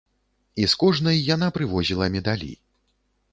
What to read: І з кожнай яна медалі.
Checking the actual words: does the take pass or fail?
fail